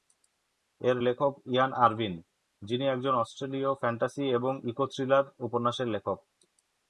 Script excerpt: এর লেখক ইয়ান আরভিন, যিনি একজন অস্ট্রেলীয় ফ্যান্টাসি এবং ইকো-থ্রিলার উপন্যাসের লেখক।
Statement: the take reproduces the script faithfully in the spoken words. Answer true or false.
true